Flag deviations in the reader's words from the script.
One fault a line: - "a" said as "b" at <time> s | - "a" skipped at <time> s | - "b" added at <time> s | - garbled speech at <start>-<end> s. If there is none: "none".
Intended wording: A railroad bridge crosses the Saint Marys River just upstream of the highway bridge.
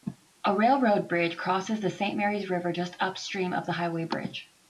none